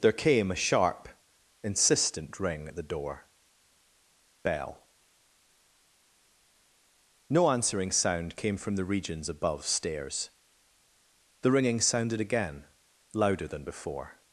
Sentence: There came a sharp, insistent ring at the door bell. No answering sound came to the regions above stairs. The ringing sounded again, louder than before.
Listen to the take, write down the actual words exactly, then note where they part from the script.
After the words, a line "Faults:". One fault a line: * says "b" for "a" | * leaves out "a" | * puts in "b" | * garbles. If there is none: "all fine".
There came a sharp, insistent ring at the door bell. No answering sound came from the regions above stairs. The ringing sounded again, louder than before.
Faults:
* says "from" for "to"